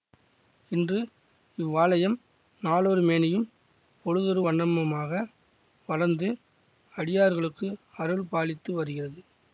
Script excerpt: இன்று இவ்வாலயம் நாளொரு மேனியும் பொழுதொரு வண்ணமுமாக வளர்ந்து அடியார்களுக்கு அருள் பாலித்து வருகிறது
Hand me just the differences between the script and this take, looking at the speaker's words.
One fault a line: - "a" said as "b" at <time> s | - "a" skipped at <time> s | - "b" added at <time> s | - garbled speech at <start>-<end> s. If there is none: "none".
none